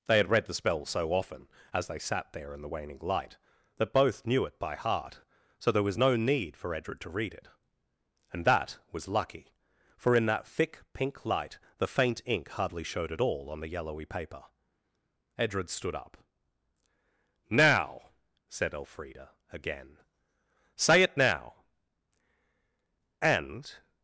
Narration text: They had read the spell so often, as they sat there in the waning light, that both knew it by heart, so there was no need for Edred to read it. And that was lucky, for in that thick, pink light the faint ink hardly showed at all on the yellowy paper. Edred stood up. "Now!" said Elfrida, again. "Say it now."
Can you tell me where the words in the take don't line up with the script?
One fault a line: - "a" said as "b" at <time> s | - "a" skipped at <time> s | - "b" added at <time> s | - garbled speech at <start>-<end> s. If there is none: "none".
- "And" added at 23.2 s